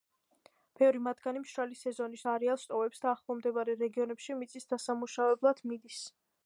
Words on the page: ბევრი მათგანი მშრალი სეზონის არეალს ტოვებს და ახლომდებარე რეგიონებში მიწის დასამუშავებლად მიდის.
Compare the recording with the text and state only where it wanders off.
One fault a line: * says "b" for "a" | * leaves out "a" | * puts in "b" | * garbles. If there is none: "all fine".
all fine